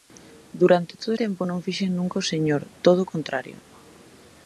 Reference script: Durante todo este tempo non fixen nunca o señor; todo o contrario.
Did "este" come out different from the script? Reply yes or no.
yes